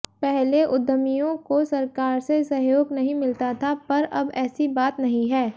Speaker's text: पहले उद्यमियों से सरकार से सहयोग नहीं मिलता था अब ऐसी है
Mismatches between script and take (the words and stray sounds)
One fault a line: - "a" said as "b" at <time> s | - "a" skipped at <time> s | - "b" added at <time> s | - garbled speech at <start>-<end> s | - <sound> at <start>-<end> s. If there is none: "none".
- "से" said as "को" at 1.5 s
- "पर" added at 3.9 s
- "बात नहीं" added at 4.8 s